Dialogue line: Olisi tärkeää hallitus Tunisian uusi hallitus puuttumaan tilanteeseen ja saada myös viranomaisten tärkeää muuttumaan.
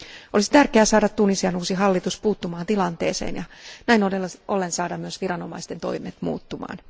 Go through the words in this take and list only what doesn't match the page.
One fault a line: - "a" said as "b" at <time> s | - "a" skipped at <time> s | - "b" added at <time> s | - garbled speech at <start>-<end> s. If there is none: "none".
- "hallitus" said as "saada" at 0.8 s
- "näin ollen" added at 3.9 s
- "tärkeää" said as "toimet" at 5.8 s